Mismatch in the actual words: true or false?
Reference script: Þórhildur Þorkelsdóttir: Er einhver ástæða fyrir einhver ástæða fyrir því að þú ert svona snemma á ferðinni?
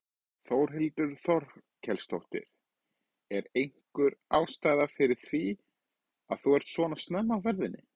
true